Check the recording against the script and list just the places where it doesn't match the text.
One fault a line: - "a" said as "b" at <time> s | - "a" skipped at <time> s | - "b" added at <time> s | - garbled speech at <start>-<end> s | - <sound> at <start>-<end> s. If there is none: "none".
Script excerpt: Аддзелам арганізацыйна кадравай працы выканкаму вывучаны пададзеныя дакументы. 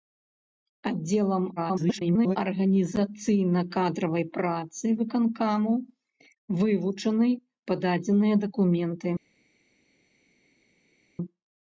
- garbled speech at 1.6-2.4 s